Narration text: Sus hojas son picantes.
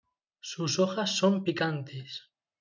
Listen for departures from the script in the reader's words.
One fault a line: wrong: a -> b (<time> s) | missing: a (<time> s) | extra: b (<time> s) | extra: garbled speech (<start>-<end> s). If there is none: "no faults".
no faults